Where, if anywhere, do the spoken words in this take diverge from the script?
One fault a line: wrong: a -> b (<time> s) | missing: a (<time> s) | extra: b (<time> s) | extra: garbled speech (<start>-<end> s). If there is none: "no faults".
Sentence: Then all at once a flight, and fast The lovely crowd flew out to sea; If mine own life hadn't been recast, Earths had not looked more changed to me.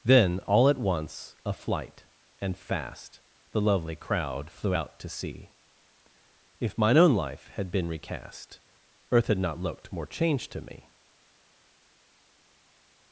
wrong: hadn't -> had (7.6 s)
wrong: Earths -> Earth (9.1 s)